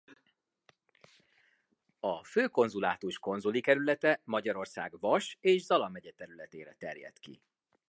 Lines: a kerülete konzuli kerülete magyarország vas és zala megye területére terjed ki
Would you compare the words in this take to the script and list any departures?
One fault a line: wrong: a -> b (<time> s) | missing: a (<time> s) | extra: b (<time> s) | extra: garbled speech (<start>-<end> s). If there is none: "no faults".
wrong: kerülete -> főkonzulátus (2.2 s)